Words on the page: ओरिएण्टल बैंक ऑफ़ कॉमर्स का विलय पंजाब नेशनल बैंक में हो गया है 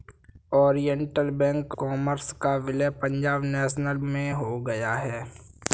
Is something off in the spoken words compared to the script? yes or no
yes